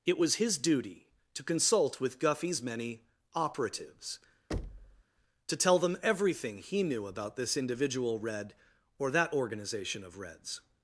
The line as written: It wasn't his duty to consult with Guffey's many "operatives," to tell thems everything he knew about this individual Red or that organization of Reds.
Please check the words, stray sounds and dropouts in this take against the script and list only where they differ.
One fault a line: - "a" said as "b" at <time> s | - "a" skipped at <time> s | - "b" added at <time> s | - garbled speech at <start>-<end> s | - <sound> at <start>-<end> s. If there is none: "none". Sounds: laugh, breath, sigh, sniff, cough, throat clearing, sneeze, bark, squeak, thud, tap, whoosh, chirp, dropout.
- "wasn't" said as "was" at 0.2 s
- thud at 4.5-5.0 s
- "thems" said as "them" at 5.8 s